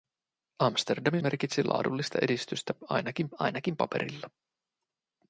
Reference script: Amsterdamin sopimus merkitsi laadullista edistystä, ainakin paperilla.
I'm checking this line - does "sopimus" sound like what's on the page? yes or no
no